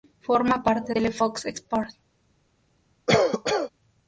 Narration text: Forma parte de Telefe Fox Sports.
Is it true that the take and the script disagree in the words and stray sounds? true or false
true